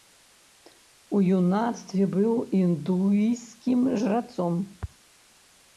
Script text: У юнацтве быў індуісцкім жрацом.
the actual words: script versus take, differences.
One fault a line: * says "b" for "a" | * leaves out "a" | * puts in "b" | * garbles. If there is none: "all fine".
all fine